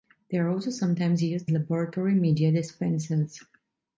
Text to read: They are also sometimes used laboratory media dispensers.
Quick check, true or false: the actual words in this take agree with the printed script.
true